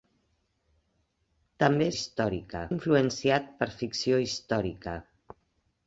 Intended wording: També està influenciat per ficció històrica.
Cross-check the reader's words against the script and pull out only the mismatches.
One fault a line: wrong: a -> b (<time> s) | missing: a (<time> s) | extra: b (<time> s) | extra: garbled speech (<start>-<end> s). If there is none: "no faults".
wrong: està -> històrica (2.0 s)